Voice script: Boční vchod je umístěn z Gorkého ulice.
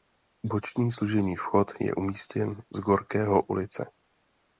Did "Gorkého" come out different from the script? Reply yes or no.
no